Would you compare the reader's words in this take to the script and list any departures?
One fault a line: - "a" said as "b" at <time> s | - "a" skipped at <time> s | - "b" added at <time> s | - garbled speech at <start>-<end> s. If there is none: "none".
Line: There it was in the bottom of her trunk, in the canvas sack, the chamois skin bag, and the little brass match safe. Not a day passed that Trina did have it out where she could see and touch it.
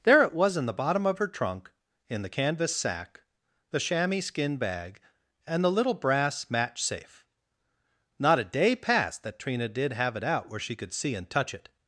none